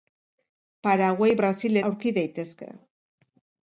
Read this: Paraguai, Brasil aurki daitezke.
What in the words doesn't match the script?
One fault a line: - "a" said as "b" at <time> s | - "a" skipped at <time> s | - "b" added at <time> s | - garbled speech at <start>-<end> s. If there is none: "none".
none